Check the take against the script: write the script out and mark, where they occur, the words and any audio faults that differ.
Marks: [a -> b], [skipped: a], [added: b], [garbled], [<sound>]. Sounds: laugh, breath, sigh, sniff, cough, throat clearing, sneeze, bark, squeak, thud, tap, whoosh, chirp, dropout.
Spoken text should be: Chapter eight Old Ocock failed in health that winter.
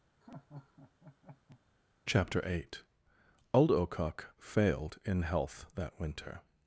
[laugh] Chapter eight Old Ocock failed in health that winter.